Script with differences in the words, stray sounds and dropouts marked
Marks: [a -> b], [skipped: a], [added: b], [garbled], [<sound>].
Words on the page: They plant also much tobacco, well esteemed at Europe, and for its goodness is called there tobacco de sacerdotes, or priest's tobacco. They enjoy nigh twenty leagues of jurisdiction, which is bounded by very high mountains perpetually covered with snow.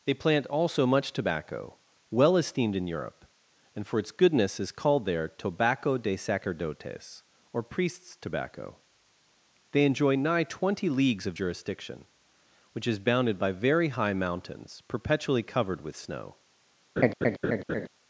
They plant also much tobacco, well esteemed [at -> in] Europe, and for its goodness is called there tobacco de sacerdotes, or priest's tobacco. They enjoy nigh twenty leagues of jurisdiction, which is bounded by very high mountains perpetually covered with snow. [laugh]